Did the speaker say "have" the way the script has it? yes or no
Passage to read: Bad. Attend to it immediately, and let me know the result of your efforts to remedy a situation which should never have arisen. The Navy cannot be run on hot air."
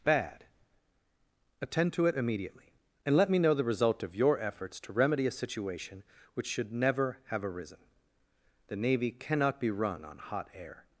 yes